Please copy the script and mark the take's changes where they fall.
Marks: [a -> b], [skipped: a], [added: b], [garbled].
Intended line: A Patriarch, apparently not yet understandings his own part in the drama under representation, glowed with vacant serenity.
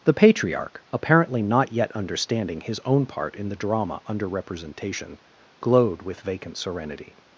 [A -> The] Patriarch, apparently not yet [understandings -> understanding] his own part in the drama under representation, glowed with vacant serenity.